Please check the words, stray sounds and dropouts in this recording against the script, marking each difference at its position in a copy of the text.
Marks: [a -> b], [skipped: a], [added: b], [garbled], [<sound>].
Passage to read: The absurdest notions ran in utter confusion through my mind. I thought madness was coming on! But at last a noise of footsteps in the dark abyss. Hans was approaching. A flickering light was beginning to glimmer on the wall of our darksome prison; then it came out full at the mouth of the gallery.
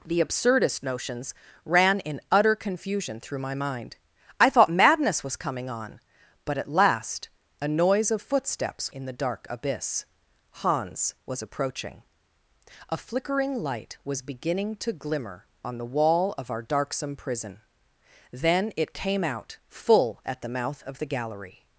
The absurdest notions ran in utter confusion through my mind. I thought madness was coming on! But at last a noise of footsteps in the dark abyss. Hans was approaching. A flickering light was beginning to glimmer on the wall of our darksome prison; then it came out full at the mouth of the gallery.